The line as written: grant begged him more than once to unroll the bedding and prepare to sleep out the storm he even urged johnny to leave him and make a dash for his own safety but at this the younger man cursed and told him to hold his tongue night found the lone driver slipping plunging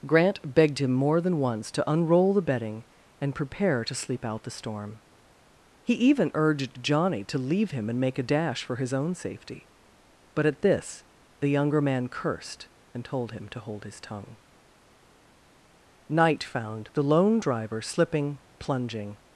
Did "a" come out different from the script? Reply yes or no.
no